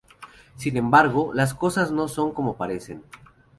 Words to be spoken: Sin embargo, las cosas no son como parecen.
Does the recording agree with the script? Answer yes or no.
yes